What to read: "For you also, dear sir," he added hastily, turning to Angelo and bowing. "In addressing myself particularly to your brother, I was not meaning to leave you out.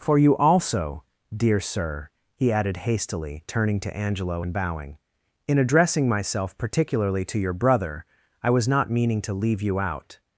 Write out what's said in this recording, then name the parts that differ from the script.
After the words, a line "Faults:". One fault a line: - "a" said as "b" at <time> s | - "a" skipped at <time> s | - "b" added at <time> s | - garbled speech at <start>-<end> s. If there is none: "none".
"For you also, dear sir," he added hastily, turning to Angelo and bowing. "In addressing myself particularly to your brother, I was not meaning to leave you out.
Faults:
none